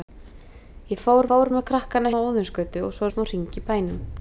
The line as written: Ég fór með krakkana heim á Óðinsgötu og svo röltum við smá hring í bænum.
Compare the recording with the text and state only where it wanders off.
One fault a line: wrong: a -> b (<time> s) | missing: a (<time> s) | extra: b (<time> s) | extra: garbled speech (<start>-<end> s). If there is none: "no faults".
extra: fór (1.3 s)
missing: heim (2.1 s)
missing: röltum (3.1 s)